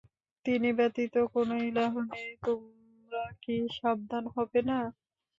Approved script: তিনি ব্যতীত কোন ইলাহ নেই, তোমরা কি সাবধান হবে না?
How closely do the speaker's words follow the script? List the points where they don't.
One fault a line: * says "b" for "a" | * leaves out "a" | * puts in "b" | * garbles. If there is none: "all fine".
all fine